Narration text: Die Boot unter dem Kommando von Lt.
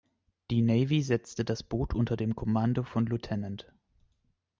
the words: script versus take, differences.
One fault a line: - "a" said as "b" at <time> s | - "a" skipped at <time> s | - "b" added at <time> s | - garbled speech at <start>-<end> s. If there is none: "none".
- "Navy setzte das" added at 0.6 s